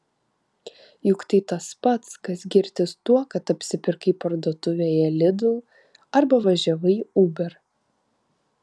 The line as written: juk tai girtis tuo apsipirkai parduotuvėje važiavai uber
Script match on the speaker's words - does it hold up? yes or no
no